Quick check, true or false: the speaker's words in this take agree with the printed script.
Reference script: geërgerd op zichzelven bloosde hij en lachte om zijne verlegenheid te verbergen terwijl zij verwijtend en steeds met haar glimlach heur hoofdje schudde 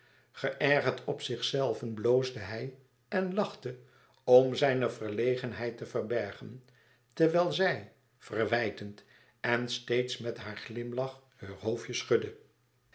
true